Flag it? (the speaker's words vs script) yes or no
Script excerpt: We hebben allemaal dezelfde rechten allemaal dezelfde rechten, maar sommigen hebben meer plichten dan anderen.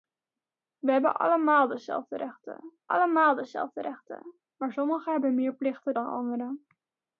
no